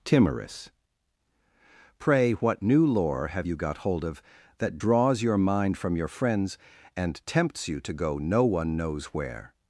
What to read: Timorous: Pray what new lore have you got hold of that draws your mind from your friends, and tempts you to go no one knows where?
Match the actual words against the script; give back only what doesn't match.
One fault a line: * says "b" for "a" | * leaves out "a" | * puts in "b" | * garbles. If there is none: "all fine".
all fine